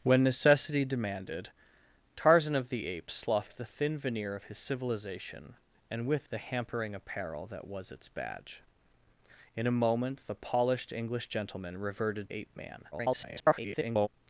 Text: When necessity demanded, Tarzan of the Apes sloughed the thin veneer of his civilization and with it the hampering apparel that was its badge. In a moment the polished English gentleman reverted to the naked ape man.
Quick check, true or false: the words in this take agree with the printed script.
false